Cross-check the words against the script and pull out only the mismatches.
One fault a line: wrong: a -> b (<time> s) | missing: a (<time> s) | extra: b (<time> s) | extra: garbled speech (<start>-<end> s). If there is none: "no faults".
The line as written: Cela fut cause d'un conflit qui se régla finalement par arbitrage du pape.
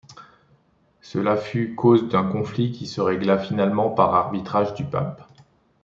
no faults